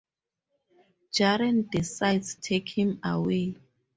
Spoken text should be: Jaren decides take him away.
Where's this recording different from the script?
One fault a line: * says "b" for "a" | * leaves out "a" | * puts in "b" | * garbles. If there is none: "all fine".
all fine